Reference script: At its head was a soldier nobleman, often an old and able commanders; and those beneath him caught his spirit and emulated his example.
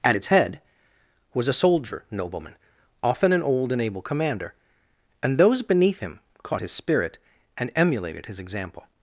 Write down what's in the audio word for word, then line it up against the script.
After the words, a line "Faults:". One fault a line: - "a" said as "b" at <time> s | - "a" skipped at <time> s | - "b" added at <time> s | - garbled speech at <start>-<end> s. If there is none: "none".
At its head was a soldier nobleman, often an old and able commander; and those beneath him caught his spirit and emulated his example.
Faults:
- "commanders" said as "commander" at 4.0 s